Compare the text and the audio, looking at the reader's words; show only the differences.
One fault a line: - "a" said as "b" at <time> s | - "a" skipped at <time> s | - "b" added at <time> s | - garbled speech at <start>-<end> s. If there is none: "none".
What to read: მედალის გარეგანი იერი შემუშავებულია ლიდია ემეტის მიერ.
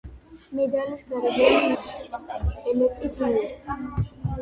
- "იერი შემუშავებულია ლიდია" skipped at 1.7 s